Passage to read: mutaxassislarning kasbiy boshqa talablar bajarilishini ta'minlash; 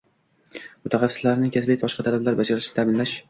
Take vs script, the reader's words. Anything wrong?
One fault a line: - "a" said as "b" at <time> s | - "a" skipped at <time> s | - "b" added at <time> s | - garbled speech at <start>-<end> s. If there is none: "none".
none